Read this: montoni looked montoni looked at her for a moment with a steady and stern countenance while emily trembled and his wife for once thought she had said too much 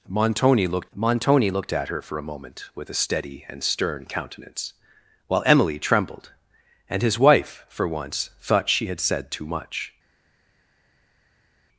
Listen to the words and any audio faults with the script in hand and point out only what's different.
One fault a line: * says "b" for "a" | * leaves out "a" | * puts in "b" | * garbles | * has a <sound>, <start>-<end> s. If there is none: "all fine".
all fine